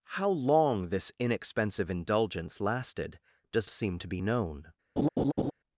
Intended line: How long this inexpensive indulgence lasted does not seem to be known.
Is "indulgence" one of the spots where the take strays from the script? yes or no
no